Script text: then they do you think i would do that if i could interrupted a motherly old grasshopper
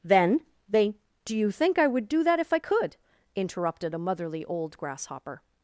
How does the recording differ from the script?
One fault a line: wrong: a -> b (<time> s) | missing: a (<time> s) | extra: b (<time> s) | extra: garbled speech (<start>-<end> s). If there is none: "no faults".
no faults